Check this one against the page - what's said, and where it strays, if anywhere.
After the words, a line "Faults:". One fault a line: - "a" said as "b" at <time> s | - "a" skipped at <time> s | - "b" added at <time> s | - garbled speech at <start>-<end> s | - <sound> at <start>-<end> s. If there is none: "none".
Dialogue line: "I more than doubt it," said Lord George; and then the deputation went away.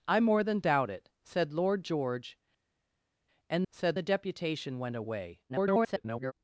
"I more than doubt it," said Lord George; and said the deputation went away. [garbled]
Faults:
- "then" said as "said" at 3.7 s
- garbled speech at 5.5-6.3 s